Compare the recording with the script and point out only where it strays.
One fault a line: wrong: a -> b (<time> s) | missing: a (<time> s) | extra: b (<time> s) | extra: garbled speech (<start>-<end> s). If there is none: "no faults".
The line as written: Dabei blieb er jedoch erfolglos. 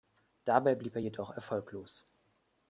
no faults